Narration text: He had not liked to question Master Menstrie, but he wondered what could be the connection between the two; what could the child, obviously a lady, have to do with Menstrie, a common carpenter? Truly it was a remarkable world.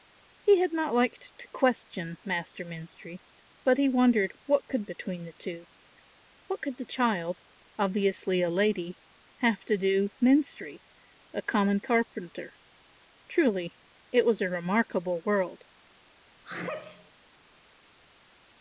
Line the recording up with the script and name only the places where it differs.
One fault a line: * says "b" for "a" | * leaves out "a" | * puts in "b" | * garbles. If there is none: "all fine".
* leaves out "be the connection"
* leaves out "with"